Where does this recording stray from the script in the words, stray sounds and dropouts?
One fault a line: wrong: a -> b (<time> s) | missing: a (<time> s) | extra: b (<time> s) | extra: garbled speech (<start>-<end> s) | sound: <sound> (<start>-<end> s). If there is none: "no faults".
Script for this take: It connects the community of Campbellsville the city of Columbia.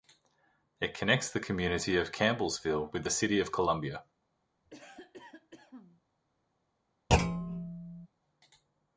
extra: with (2.9 s)
sound: cough (4.7-6.0 s)
sound: thud (7.1-8.1 s)